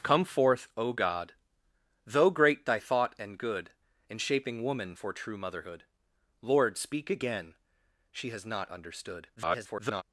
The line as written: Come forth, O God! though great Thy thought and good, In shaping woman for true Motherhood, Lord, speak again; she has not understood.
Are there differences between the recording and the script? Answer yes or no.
yes